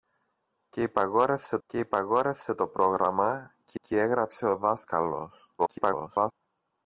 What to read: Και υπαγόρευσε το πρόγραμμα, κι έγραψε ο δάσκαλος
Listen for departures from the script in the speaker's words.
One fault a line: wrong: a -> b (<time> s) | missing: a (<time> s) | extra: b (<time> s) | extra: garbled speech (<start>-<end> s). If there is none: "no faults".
extra: και υπαγόρευσε (1.7 s)
extra: κι (3.8 s)
extra: garbled speech (5.6-6.3 s)